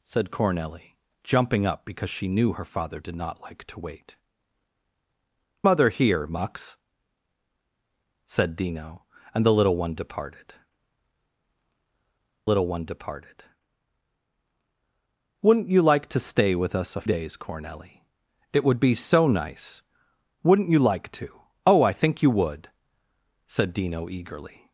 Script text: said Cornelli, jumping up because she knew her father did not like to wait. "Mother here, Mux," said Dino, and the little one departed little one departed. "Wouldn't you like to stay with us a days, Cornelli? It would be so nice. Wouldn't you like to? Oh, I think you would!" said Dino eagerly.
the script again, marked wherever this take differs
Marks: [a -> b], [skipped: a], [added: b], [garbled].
said Cornelli, jumping up because she knew her father did not like to wait. "Mother here, Mux," said Dino, and the little one departed little one departed. "Wouldn't you like to stay with us a days, Cornelli? It would be so nice. Wouldn't you like to? Oh, I think you would!" said Dino eagerly.